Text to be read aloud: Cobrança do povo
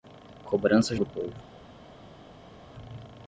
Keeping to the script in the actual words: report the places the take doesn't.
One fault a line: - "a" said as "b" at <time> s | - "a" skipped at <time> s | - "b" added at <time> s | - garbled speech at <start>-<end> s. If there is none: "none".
none